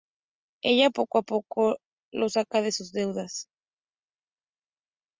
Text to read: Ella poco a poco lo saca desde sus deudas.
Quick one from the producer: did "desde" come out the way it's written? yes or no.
no